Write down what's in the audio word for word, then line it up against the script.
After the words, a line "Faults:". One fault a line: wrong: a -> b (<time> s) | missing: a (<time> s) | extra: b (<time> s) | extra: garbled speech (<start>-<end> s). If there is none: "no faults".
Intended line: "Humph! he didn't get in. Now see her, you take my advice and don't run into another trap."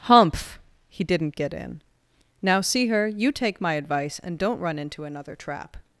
"Humph! he didn't get in. Now see her, you take my advice and don't run into another trap."
Faults:
no faults